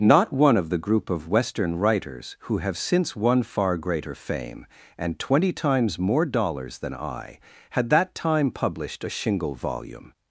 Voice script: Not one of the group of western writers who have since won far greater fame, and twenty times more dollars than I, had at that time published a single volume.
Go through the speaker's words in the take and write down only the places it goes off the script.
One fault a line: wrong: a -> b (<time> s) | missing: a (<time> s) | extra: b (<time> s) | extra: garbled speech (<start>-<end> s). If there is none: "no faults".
missing: at (7.9 s)
wrong: single -> shingle (9.1 s)